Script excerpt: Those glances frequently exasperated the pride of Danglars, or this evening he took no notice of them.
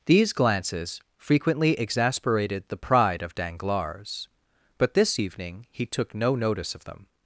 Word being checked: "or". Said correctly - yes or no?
no